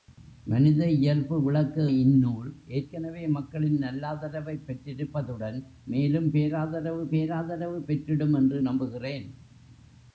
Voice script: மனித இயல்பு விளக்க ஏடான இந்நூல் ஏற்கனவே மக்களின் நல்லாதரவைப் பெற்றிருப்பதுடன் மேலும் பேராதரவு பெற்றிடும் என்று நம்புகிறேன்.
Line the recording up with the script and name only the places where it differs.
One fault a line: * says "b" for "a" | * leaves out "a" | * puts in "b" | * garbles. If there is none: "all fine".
* leaves out "ஏடான"
* puts in "பேராதரவு"